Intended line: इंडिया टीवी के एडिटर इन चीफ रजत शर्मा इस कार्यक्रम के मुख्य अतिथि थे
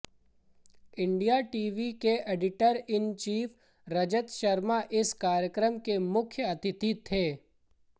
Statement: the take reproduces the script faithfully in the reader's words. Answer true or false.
true